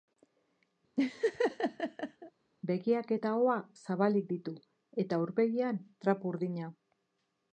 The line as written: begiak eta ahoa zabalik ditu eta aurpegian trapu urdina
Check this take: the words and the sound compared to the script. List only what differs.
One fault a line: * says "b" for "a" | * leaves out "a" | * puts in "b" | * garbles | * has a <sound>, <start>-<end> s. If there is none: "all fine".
* has a laugh, 1.0-2.3 s